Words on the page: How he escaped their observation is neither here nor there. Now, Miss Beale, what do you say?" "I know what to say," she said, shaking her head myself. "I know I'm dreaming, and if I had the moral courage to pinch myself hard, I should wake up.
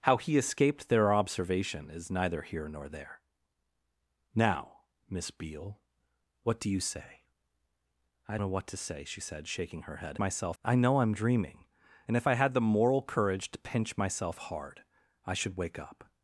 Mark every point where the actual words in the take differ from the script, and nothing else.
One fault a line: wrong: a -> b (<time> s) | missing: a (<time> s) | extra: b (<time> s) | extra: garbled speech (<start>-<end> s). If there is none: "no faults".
no faults